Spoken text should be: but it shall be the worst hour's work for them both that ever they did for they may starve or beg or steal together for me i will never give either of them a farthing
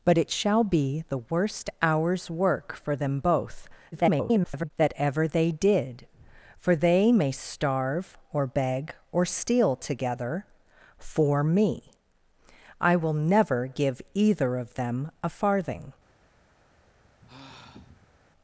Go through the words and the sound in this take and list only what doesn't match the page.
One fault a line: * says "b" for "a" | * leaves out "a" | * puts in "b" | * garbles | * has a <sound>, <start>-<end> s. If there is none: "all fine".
* garbles
* has a sigh, 16.7-18.1 s